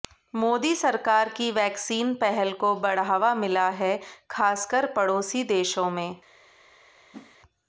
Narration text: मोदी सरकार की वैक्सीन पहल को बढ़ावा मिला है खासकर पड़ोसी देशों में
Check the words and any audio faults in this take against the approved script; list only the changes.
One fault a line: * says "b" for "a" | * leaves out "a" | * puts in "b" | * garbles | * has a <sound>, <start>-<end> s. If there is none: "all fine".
* has a whoosh, 7.1-7.4 s